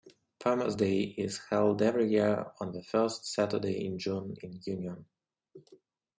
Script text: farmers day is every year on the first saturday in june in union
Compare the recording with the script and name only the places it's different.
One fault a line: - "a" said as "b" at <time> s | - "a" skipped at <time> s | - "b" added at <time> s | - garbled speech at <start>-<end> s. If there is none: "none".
- "held" added at 1.5 s